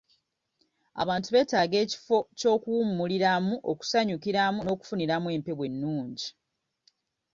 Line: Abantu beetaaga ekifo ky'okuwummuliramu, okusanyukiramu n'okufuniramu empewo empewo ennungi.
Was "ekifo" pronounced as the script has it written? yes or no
yes